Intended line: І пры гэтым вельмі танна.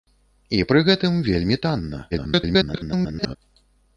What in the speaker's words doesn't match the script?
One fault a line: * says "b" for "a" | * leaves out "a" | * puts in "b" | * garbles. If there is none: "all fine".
* garbles